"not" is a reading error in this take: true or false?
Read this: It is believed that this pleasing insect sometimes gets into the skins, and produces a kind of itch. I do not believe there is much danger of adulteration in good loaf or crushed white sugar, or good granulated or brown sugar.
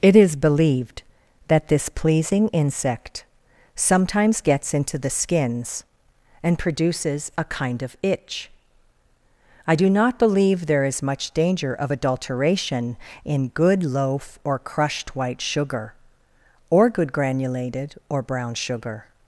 false